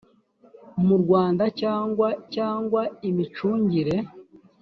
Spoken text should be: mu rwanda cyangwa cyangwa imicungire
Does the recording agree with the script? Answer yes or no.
yes